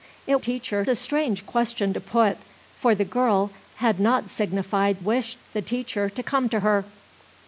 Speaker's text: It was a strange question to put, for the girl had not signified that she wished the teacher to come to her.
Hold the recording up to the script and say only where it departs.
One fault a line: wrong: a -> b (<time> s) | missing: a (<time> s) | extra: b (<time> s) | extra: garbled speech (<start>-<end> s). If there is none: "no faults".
wrong: was -> teacher (0.4 s)
missing: that she (5.0 s)